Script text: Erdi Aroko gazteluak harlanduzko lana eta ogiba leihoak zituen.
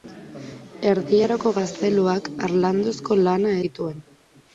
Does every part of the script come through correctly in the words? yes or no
no